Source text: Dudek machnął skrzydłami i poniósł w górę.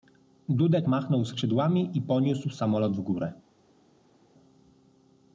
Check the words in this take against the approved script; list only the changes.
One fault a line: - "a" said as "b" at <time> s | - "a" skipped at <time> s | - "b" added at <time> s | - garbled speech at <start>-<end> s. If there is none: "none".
- "samolot" added at 2.5 s